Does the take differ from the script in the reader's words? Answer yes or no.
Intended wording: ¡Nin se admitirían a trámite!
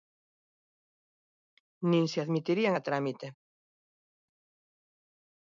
no